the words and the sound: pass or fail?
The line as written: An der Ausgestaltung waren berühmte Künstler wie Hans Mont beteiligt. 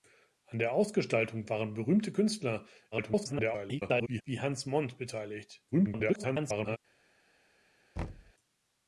fail